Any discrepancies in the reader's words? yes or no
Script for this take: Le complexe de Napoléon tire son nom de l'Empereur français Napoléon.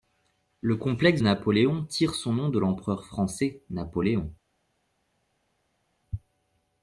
yes